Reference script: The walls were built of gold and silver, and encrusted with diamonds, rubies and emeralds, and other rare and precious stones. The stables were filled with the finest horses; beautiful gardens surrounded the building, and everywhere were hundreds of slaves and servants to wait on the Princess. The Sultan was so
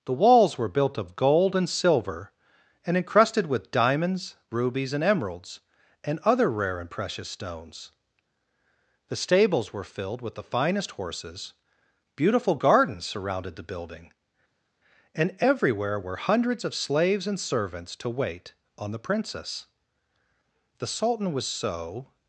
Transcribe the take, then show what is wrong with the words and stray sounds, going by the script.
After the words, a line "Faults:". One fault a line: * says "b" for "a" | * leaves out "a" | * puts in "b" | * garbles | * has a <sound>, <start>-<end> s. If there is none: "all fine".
The walls were built of gold and silver, and encrusted with diamonds, rubies and emeralds, and other rare and precious stones. The stables were filled with the finest horses; beautiful gardens surrounded the building, and everywhere were hundreds of slaves and servants to wait on the Princess. The Sultan was so
Faults:
all fine